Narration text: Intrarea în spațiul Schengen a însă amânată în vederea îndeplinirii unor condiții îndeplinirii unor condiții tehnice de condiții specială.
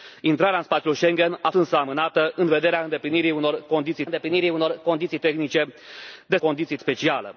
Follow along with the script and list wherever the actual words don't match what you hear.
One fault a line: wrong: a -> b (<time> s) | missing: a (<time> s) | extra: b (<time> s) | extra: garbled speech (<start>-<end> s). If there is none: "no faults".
no faults